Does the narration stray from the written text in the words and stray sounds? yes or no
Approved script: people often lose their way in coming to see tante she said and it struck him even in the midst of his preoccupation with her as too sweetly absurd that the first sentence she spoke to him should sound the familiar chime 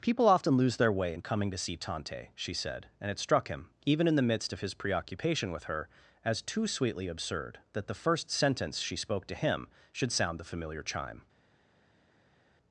no